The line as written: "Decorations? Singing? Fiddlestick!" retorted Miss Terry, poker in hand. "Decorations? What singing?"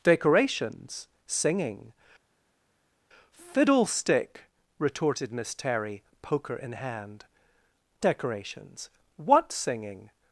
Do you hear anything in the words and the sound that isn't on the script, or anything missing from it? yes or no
no